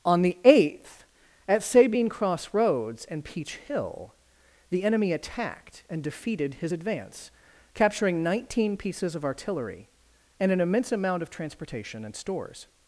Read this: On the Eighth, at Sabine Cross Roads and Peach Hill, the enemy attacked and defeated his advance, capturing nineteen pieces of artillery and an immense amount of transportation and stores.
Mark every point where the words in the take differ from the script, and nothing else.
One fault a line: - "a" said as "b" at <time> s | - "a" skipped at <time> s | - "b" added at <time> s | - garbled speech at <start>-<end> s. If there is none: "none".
none